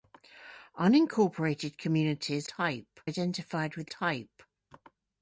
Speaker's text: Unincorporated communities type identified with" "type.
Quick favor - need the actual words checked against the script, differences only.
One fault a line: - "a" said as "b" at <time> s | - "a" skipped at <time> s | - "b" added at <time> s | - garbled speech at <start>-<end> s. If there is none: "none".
none